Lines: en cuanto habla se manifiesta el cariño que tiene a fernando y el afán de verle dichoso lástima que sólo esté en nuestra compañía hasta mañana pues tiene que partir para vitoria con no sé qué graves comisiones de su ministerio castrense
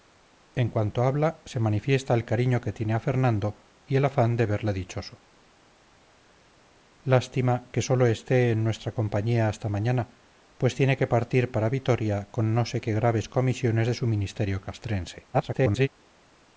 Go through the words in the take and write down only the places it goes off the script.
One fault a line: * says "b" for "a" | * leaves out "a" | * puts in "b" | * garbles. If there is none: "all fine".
* garbles